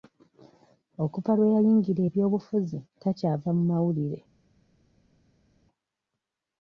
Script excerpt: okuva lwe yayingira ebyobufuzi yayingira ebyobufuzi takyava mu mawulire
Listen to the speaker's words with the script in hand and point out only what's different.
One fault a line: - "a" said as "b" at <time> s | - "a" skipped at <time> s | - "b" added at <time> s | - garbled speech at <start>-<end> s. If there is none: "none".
- "yayingira ebyobufuzi" skipped at 2.8 s